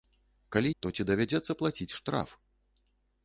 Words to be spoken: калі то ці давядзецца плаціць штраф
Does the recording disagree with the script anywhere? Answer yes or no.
no